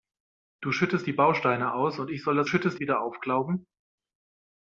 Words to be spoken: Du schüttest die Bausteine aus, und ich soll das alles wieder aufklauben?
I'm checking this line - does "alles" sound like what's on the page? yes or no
no